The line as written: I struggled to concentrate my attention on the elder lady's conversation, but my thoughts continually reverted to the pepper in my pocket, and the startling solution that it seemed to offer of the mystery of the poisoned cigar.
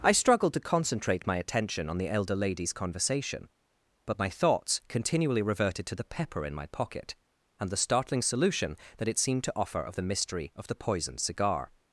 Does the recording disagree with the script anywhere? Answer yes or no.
no